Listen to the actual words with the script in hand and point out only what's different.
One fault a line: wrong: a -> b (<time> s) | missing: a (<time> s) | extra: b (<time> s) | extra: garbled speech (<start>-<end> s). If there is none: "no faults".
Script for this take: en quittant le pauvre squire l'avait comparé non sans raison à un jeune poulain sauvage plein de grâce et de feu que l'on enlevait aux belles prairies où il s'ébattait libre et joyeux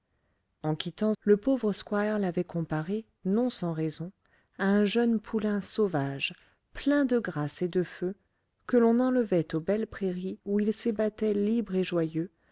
no faults